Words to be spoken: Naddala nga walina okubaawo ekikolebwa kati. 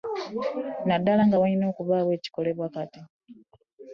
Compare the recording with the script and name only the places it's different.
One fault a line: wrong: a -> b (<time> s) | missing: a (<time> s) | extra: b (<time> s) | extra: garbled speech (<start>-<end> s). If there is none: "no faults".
no faults